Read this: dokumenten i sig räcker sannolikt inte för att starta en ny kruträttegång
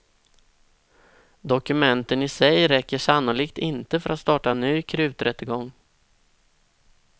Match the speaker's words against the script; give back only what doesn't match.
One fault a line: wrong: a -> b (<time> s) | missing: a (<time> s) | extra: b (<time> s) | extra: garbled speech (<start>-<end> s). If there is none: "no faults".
no faults